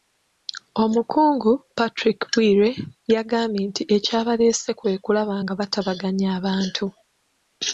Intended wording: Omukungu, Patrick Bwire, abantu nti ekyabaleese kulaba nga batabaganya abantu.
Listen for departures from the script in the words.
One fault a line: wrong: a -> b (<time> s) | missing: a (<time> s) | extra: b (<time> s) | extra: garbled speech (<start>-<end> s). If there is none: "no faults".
wrong: abantu -> yagambye (3.1 s)
extra: kwe (4.8 s)